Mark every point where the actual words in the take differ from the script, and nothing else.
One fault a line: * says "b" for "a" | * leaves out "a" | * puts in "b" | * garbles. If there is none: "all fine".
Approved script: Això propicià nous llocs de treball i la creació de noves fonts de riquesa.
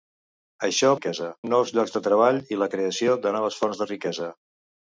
* says "riquesa" for "propicià"